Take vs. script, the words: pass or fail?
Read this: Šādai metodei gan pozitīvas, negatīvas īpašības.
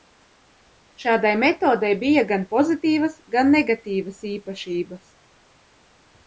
fail